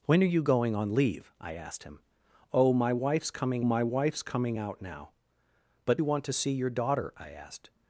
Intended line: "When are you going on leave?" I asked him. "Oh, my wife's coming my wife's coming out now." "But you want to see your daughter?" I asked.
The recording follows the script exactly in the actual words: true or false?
true